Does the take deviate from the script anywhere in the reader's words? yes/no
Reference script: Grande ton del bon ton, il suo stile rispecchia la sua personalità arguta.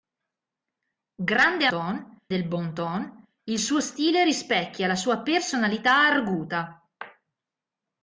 no